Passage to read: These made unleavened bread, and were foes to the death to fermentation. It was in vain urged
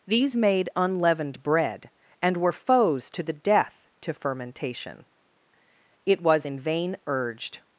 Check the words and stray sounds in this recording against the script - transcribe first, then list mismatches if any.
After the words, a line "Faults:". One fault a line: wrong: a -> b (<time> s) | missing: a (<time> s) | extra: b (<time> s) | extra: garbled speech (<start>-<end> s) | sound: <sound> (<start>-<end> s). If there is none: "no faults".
These made unleavened bread, and were foes to the death to fermentation. It was in vain urged
Faults:
no faults